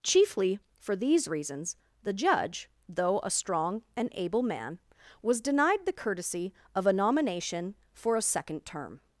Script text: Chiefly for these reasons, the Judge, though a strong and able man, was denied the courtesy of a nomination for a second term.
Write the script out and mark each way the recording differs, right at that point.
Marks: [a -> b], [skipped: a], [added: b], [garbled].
Chiefly for these reasons, the Judge, though a strong and able man, was denied the courtesy of a nomination for a second term.